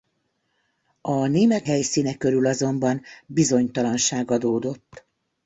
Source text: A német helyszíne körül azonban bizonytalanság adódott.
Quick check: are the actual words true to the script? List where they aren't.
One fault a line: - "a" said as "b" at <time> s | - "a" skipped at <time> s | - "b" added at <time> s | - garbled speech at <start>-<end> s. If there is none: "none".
none